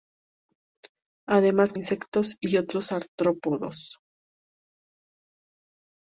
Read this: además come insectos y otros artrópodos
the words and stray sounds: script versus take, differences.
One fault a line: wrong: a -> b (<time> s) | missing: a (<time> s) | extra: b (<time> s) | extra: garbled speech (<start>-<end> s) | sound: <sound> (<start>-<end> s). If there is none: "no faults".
missing: come (1.7 s)